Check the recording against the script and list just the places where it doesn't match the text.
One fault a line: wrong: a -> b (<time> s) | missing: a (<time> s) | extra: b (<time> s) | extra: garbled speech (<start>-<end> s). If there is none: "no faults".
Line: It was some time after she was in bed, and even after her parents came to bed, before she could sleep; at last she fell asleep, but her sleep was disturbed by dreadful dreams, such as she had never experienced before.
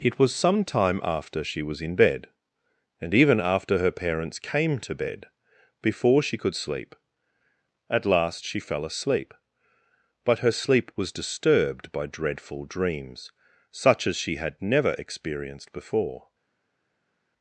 no faults